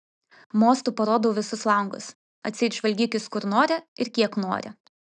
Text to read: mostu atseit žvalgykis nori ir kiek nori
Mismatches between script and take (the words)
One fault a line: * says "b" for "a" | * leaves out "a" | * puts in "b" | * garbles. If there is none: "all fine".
* puts in "parodau visus langus"
* puts in "kur"